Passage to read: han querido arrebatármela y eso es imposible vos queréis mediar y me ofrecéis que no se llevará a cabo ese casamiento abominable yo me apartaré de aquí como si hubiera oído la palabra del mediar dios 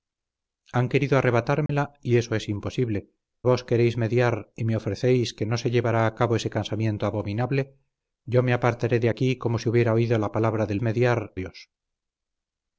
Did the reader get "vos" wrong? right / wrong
right